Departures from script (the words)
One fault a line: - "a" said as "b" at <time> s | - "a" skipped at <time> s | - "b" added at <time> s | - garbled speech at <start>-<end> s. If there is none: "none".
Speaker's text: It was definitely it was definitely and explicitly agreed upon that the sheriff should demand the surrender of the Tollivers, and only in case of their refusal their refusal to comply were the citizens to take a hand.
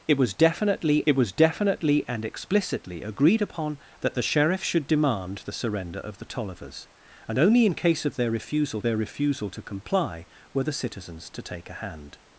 none